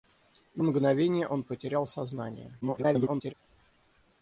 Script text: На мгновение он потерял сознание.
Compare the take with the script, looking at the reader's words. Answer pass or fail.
fail